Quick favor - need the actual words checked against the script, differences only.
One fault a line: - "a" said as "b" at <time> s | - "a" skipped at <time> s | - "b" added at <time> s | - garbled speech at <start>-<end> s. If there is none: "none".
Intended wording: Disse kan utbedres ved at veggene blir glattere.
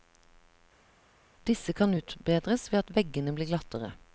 none